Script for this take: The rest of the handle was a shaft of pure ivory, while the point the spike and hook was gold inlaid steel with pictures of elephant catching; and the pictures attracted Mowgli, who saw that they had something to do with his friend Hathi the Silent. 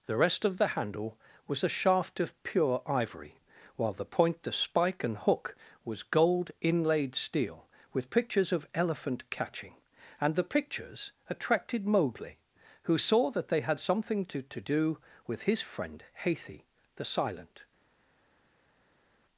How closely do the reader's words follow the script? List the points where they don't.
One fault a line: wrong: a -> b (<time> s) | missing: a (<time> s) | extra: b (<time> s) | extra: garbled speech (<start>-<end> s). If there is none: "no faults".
extra: to (14.4 s)